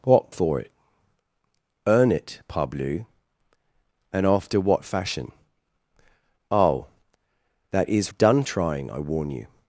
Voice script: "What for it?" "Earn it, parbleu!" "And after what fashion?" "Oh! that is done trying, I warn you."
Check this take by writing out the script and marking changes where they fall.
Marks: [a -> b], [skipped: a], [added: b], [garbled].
"What for it?" "Earn it, parbleu!" "And after what fashion?" "Oh! that is done trying, I warn you."